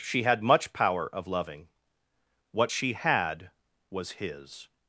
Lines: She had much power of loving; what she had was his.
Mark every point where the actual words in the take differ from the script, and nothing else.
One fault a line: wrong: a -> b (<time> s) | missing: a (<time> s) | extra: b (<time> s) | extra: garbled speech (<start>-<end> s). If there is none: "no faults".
no faults